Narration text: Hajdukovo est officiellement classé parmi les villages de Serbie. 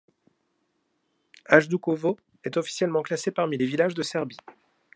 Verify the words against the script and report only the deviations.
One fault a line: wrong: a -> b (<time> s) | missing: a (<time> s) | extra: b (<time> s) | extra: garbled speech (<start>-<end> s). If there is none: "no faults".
no faults